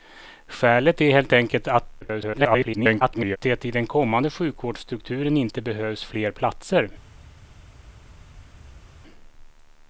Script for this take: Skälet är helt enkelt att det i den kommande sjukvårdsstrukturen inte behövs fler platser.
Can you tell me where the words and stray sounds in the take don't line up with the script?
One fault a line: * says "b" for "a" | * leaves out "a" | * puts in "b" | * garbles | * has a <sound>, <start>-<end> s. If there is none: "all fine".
* garbles